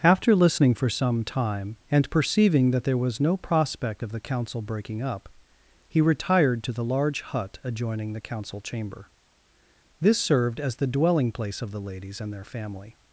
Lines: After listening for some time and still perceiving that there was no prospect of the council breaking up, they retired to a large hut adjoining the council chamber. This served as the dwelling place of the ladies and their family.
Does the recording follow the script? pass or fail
fail